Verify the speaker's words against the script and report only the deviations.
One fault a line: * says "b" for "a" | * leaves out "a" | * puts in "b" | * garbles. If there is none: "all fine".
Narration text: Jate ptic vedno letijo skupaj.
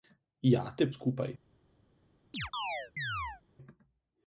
* leaves out "ptic vedno letijo"